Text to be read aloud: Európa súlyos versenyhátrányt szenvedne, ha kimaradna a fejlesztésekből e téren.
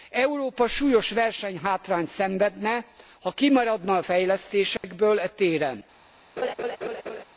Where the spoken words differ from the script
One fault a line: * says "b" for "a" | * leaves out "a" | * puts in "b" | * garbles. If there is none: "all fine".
all fine